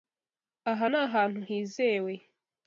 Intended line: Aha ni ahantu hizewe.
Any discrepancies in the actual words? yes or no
no